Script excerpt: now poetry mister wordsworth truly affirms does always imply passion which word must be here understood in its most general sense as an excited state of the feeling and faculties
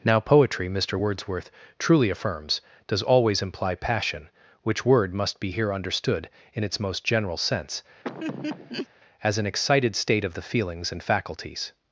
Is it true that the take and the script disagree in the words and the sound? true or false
true